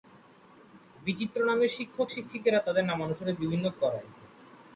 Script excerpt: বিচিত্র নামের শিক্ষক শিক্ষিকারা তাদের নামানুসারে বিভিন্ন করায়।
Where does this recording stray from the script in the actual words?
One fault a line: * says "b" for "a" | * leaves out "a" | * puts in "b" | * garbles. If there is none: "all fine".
all fine